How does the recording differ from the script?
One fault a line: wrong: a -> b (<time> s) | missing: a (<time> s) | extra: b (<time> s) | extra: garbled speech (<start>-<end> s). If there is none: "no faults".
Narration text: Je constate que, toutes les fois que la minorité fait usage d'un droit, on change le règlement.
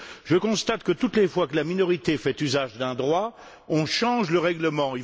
no faults